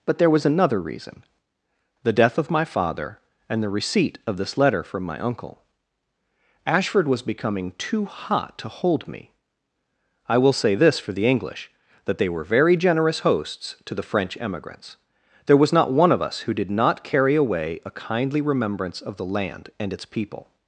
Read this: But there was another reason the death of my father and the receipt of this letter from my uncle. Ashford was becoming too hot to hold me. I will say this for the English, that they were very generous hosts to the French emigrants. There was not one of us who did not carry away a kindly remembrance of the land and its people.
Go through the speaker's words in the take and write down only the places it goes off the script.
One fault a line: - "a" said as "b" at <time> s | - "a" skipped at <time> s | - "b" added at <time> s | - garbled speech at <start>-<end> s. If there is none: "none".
none